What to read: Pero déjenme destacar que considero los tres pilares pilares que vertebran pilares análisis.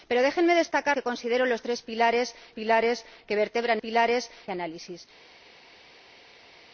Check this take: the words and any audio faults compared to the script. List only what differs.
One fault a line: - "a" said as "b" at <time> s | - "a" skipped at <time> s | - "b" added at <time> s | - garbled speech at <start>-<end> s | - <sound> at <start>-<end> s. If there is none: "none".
none